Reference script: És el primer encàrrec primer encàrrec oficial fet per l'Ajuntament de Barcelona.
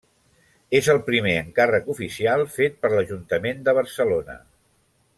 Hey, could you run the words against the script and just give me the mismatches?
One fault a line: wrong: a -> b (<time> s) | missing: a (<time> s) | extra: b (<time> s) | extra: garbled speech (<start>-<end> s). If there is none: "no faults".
missing: primer encàrrec (1.9 s)